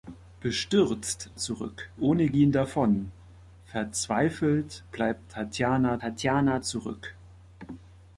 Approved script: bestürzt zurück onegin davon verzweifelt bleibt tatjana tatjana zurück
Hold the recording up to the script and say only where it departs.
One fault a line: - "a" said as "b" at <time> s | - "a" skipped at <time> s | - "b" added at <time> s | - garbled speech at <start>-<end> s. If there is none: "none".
none